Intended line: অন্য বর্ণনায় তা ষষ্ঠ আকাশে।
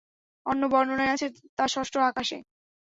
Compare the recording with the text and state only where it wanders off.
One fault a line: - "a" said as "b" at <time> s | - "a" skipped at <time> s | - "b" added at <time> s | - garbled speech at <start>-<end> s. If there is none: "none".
- "আছে" added at 1.1 s